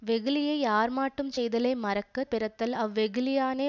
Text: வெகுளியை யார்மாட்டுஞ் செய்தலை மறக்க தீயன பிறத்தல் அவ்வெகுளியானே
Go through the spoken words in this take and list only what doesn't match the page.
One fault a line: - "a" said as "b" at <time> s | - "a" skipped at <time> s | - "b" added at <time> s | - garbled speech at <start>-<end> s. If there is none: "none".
- "தீயன" skipped at 2.2 s